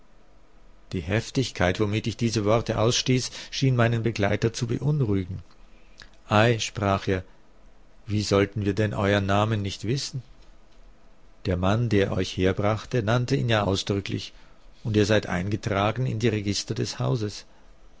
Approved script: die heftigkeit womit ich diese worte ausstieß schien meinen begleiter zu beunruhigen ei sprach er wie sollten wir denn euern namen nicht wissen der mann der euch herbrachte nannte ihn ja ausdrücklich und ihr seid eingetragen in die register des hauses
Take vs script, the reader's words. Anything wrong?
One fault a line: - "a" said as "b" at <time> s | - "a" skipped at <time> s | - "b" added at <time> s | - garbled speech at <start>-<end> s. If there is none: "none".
none